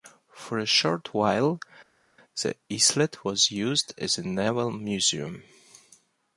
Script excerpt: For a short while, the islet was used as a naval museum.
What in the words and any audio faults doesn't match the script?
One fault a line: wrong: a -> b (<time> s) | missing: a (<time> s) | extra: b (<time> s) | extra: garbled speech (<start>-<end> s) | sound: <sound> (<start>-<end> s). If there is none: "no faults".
no faults